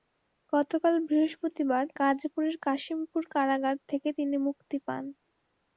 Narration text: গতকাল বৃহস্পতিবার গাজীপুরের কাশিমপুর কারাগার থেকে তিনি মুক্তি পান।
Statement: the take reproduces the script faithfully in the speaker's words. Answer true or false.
true